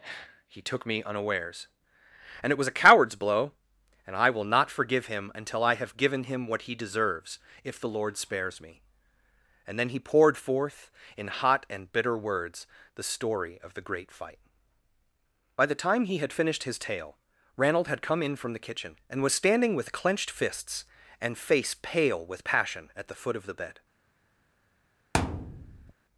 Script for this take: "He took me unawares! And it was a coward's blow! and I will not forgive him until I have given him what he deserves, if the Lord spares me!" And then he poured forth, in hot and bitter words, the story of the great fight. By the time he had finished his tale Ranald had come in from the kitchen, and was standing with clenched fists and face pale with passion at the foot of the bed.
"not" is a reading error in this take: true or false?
false